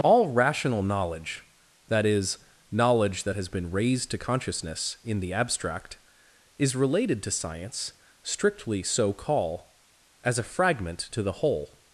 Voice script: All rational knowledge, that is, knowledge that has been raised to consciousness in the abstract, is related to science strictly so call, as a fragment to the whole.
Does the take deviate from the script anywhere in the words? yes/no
no